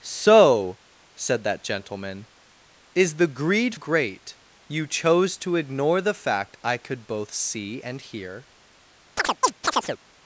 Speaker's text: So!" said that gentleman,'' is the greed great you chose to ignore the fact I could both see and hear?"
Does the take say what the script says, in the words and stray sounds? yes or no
no